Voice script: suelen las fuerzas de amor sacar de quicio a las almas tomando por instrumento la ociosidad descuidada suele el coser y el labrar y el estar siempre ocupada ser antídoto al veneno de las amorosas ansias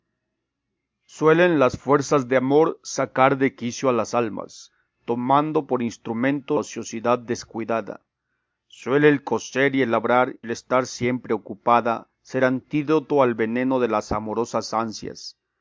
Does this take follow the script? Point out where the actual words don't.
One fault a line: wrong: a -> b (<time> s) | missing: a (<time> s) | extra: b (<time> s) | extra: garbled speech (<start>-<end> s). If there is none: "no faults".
missing: la (6.6 s)
missing: y (10.4 s)